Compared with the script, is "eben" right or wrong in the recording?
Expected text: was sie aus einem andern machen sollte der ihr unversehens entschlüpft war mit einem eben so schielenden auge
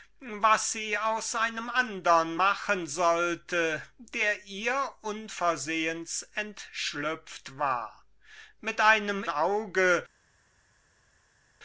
wrong